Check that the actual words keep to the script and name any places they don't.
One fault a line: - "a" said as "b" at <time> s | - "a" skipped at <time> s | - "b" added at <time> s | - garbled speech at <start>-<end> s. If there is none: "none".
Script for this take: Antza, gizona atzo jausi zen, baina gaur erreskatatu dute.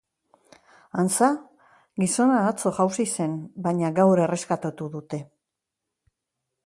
none